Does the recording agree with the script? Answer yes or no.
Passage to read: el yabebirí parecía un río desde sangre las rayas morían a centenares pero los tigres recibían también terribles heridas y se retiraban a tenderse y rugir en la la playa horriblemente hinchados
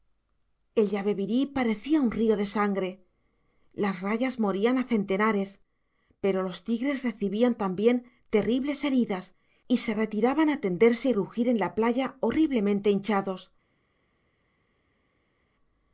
no